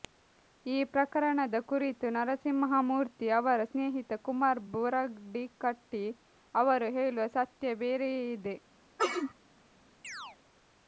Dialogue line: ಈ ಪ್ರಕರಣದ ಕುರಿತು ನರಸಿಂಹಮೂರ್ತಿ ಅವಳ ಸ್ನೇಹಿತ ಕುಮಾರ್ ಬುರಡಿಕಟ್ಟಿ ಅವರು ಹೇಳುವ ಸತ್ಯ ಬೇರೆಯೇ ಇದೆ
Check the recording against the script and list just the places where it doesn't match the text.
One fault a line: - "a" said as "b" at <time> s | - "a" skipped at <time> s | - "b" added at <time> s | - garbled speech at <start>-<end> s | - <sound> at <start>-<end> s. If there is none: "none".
- "ಅವಳ" said as "ಅವರ" at 3.4 s
- sneeze at 9.0-9.3 s
- chirp at 10.0-10.4 s